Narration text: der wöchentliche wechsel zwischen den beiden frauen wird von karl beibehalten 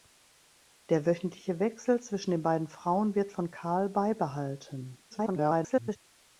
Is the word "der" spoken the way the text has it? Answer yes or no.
yes